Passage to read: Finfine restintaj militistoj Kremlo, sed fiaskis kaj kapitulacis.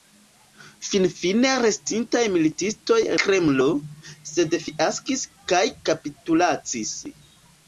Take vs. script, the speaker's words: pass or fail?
pass